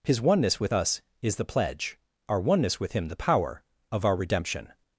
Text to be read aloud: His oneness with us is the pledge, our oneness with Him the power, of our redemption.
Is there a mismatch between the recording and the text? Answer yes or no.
no